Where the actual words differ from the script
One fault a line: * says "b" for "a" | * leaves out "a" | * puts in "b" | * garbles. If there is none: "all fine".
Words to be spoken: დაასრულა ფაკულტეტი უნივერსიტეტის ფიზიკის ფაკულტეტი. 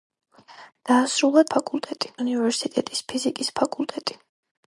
all fine